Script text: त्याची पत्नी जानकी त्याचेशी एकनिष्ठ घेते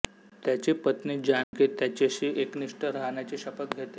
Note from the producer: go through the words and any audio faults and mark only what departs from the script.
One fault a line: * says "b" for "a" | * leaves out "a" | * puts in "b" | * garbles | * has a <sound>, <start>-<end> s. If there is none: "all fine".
* has a dropout, 1.4-1.5 s
* puts in "राहण्याची शपथ"